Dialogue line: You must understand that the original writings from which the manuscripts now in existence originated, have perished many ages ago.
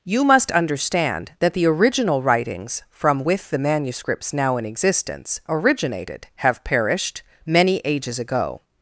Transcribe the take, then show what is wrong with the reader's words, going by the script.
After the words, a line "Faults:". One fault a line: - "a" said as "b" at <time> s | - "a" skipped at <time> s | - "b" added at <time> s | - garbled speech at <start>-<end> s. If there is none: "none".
You must understand that the original writings from with the manuscripts now in existence originated, have perished many ages ago.
Faults:
- "which" said as "with" at 3.2 s